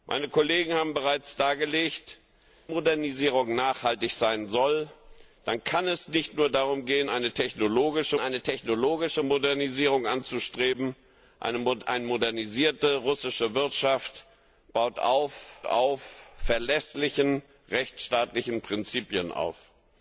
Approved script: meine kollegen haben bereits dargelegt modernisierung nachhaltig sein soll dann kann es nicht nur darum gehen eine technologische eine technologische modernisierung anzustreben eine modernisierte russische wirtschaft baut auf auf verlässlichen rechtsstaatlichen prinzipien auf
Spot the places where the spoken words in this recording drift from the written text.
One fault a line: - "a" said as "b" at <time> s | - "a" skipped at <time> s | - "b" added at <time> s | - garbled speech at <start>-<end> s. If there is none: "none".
none